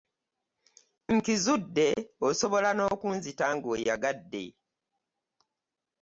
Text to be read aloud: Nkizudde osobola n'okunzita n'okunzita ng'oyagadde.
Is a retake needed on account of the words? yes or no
yes